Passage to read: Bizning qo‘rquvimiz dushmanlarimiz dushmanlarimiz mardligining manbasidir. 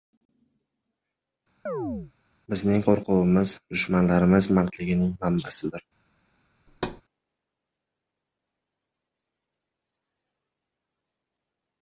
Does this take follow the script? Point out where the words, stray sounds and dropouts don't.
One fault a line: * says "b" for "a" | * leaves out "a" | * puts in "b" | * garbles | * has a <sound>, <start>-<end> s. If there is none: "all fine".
* has a chirp, 1.7-2.1 s
* leaves out "dushmanlarimiz"
* has a thud, 6.7-7.0 s